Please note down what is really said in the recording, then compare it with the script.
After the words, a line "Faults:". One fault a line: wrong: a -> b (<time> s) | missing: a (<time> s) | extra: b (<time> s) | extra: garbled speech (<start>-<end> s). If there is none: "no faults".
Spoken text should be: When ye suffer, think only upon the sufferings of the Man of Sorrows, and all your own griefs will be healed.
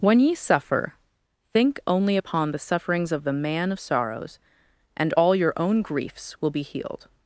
When ye suffer, think only upon the sufferings of the Man of Sorrows, and all your own griefs will be healed.
Faults:
no faults